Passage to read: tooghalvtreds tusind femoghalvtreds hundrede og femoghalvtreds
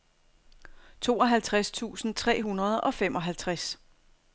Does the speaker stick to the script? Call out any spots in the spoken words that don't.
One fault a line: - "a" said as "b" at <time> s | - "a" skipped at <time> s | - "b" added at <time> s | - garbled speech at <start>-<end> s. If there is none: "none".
- "femoghalvtreds" said as "tre" at 2.1 s